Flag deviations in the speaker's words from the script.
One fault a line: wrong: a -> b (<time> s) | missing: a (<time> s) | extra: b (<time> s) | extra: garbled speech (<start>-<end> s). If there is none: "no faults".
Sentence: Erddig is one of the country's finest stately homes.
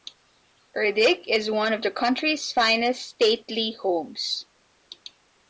no faults